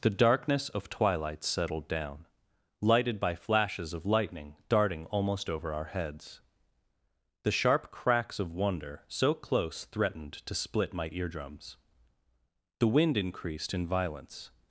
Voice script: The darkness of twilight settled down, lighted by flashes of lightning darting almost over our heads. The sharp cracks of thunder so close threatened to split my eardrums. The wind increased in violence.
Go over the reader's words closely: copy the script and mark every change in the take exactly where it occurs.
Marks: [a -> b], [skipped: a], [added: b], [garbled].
The darkness of twilight settled down, lighted by flashes of lightning darting almost over our heads. The sharp cracks of [thunder -> wonder] so close threatened to split my eardrums. The wind increased in violence.